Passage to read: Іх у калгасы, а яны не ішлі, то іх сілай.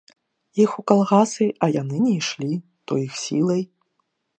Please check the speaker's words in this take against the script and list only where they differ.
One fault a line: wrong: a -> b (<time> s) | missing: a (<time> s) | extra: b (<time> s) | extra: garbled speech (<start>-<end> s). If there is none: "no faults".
no faults